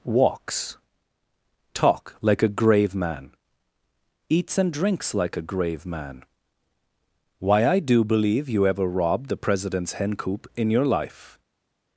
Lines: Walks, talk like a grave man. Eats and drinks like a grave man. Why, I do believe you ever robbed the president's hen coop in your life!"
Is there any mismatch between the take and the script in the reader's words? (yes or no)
no